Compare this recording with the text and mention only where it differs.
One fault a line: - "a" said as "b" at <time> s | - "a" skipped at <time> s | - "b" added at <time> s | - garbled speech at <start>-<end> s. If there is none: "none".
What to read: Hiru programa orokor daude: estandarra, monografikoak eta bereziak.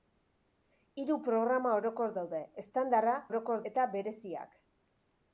- "monografikoak" said as "orokor" at 3.3 s